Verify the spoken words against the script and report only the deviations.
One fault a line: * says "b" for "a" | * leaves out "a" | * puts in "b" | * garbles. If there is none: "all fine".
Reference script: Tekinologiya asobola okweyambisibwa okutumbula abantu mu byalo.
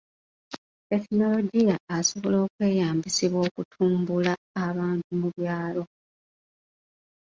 all fine